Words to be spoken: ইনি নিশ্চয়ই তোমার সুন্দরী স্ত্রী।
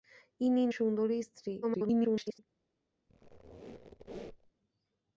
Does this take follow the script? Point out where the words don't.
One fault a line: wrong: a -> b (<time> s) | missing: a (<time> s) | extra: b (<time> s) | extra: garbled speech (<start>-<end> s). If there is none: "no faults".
missing: নিশ্চয়ই তোমার (0.6 s)
extra: garbled speech (1.6-2.4 s)